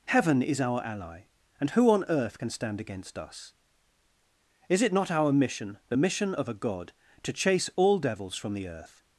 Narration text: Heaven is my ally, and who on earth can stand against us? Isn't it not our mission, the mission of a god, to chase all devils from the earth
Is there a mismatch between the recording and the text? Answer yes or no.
yes